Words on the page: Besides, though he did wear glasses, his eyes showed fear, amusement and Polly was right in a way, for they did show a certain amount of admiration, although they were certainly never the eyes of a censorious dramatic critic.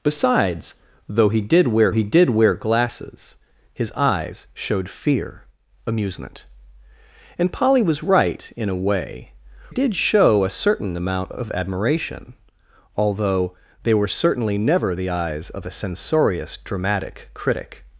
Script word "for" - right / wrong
wrong